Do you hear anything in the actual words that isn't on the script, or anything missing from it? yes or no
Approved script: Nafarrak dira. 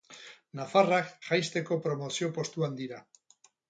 yes